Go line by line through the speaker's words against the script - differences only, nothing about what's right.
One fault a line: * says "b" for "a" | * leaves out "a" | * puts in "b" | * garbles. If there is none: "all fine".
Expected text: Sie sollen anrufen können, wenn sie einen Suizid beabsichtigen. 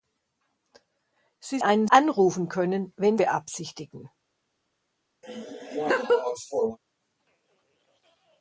* says "einen" for "sollen"
* leaves out "sie einen Suizid"